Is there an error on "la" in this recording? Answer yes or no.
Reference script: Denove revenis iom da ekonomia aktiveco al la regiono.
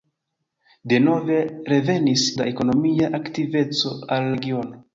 yes